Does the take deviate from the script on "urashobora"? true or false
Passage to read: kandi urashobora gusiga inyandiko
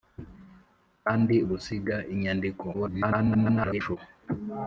true